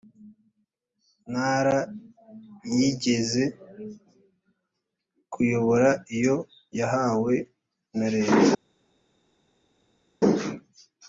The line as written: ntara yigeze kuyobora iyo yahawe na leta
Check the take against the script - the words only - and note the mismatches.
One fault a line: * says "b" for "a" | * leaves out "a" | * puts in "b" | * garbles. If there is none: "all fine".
all fine